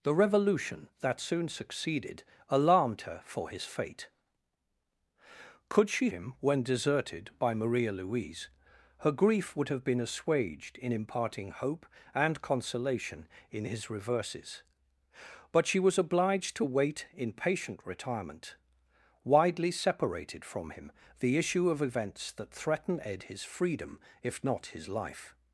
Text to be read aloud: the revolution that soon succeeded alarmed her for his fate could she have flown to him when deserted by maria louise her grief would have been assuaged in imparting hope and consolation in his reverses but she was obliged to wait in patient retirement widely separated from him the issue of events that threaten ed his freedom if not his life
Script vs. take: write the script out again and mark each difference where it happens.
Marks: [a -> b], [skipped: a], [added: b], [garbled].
the revolution that soon succeeded alarmed her for his fate could she [skipped: have flown to] him when deserted by maria louise her grief would have been assuaged in imparting hope and consolation in his reverses but she was obliged to wait in patient retirement widely separated from him the issue of events that threaten ed his freedom if not his life